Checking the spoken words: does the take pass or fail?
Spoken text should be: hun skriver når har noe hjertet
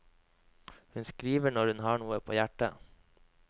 fail